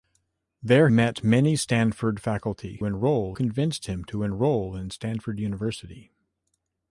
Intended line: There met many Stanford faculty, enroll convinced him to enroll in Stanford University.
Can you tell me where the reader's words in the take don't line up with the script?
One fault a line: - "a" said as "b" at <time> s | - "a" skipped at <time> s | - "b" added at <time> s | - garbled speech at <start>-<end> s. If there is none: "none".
none